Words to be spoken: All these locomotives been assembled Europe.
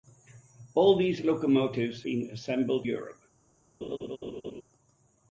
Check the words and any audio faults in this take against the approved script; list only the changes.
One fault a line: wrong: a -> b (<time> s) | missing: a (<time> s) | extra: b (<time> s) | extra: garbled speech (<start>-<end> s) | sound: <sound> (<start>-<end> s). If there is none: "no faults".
sound: laugh (3.8-4.6 s)